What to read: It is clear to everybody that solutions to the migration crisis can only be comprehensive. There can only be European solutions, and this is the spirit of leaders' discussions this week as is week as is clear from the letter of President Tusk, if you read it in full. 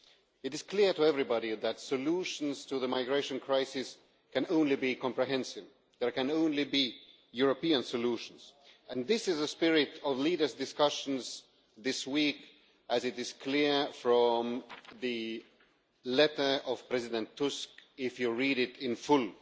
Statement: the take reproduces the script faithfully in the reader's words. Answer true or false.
false